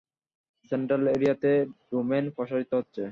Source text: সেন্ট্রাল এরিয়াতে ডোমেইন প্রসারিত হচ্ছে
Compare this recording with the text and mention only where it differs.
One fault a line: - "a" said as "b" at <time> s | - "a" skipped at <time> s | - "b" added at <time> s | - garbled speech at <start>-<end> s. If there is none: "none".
none